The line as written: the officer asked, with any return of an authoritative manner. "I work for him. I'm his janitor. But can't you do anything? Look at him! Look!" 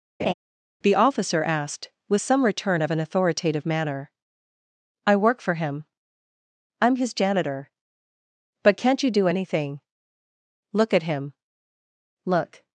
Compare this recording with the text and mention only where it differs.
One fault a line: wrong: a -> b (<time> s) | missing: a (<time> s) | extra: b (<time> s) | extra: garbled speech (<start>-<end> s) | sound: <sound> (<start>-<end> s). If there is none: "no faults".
sound: laugh (0.2-0.3 s)
wrong: any -> some (2.2 s)